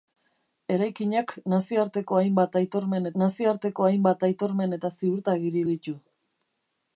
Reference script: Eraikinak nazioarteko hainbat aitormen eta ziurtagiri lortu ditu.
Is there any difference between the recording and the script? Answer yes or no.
yes